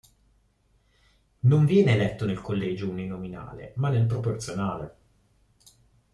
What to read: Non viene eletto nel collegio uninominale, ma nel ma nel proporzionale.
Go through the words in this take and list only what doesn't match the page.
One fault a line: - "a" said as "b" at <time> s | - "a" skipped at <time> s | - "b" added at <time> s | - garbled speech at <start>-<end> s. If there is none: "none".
- "ma nel" skipped at 4.1 s